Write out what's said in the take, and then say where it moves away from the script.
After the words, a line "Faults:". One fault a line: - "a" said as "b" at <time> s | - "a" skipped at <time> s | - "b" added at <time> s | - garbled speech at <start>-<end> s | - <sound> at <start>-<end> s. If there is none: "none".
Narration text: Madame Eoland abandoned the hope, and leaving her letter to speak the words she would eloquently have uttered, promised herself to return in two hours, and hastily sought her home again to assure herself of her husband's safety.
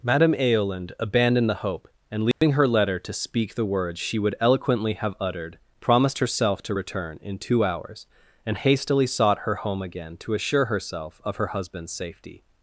Madame Eoland abandoned the hope, and leaving her letter to speak the words she would eloquently have uttered, promised herself to return in two hours, and hastily sought her home again to assure herself of her husband's safety.
Faults:
- dropout at 2.3-2.4 s